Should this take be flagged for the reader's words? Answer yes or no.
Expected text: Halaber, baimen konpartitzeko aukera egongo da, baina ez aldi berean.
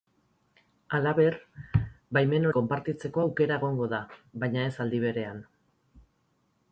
no